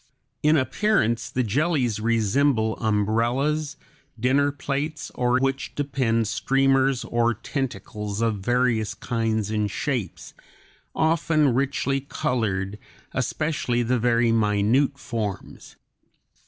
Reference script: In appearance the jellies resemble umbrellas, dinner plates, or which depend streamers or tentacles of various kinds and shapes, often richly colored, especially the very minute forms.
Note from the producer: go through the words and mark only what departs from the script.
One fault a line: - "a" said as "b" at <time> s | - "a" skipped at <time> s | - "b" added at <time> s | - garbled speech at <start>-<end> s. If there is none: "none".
none